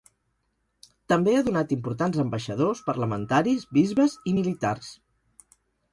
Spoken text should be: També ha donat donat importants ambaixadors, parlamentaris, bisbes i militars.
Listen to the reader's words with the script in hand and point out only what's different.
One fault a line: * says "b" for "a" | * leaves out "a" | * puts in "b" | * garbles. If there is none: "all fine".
* leaves out "donat"